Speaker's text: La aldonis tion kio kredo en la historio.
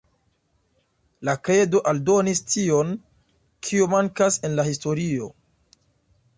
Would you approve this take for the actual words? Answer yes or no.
no